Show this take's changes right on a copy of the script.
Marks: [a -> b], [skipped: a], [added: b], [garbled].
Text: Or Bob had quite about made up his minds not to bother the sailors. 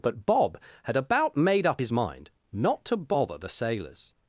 [Or -> But] Bob had [skipped: quite] about made up his [minds -> mind] not to bother the sailors.